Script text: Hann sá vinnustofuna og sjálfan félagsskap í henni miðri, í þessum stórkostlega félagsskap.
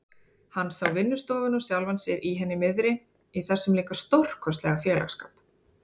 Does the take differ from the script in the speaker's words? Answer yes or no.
yes